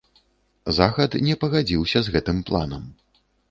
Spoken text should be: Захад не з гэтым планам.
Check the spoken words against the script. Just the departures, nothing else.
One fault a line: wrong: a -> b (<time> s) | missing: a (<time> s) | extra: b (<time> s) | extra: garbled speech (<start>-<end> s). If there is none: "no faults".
extra: пагадзіўся (1.4 s)